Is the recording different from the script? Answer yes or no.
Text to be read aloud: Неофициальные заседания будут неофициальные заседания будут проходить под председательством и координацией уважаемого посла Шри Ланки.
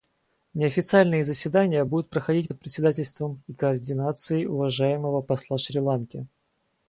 yes